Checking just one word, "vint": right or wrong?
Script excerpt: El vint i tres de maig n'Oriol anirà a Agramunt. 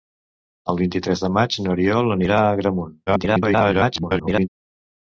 right